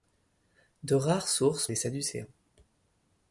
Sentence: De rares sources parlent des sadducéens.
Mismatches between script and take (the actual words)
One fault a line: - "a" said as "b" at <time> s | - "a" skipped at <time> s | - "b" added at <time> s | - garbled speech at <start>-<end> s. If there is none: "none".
- "parlent" skipped at 1.7 s